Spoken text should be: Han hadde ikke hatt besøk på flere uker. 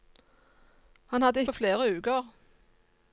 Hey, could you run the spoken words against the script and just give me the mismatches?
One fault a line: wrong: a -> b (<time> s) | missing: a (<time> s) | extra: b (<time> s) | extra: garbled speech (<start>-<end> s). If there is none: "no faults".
missing: ikke hatt besøk (1.4 s)